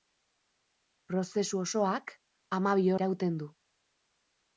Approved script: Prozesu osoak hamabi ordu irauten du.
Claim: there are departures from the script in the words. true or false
true